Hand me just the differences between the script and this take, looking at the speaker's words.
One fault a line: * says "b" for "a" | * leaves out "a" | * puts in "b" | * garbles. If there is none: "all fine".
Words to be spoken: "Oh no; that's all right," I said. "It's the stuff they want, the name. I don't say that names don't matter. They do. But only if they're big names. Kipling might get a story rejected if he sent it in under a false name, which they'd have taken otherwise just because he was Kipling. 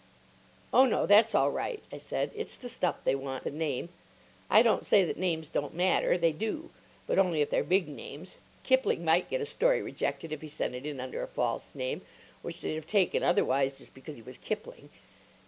all fine